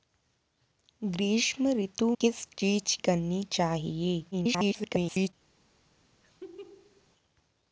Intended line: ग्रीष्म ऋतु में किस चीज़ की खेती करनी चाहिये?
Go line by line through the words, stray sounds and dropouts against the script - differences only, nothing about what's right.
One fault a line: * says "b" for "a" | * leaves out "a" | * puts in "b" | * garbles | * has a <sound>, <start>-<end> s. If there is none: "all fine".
* leaves out "में"
* leaves out "की खेती"
* garbles
* has a laugh, 6.2-7.1 s